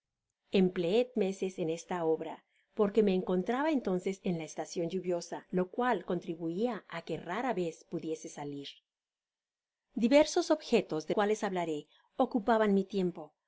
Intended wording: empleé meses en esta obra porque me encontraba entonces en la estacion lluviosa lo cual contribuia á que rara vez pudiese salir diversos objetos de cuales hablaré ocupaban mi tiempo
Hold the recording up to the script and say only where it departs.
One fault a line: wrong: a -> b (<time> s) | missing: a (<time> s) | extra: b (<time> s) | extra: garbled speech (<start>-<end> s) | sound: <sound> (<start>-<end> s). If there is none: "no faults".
no faults